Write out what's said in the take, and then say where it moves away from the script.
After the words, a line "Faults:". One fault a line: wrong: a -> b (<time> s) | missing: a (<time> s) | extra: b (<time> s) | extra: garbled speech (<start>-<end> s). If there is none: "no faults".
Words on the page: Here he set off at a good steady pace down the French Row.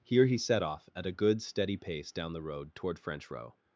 Here he set off at a good steady pace down the road toward French Row.
Faults:
extra: road toward (2.4 s)